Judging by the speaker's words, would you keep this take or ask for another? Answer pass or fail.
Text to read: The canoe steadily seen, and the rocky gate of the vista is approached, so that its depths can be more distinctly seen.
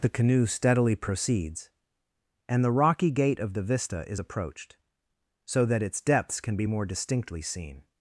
fail